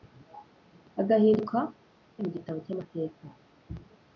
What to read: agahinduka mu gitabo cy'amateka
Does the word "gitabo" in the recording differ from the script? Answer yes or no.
no